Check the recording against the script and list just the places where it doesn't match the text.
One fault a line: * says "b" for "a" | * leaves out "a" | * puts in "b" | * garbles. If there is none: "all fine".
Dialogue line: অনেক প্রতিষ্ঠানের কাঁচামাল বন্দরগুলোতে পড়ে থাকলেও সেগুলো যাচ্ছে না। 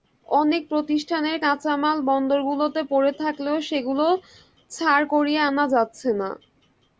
* puts in "ছাড় করিয়ে আনা"